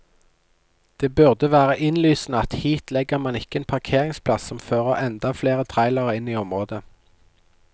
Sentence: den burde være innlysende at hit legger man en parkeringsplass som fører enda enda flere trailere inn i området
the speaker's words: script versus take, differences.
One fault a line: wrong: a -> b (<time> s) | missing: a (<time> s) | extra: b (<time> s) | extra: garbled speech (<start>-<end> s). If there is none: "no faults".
wrong: den -> det (1.0 s)
extra: ikke (3.4 s)
missing: enda (5.3 s)